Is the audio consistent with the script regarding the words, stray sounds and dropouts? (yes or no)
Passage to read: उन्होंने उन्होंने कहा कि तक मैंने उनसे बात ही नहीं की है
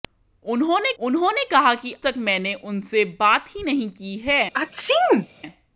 no